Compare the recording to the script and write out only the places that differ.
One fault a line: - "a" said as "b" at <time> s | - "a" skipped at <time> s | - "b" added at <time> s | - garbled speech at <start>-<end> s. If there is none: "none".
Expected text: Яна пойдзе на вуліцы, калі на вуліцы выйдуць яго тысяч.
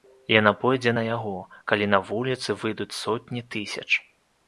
- "вуліцы" said as "яго" at 1.1 s
- "яго" said as "сотні" at 3.0 s